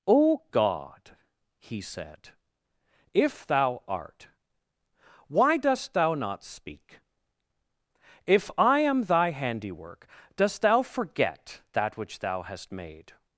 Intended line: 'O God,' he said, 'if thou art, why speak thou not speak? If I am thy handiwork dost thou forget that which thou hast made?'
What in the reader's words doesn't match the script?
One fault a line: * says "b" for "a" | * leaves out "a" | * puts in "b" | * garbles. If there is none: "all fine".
* says "dost" for "speak"